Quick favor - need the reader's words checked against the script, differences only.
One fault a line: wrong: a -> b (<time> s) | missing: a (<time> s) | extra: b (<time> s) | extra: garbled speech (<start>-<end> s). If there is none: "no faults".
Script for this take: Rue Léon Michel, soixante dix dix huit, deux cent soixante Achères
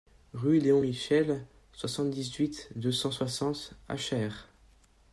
missing: dix (2.3 s)